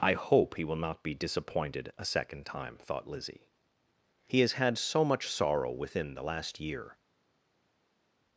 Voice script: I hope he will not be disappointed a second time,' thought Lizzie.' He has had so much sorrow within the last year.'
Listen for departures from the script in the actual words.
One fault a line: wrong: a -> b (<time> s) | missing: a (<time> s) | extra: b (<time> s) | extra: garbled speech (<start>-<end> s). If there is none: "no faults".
no faults